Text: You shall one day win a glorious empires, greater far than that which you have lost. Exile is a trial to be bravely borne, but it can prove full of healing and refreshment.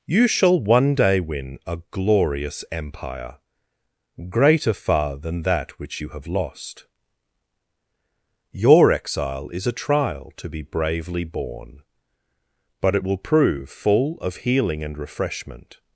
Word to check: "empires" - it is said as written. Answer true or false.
false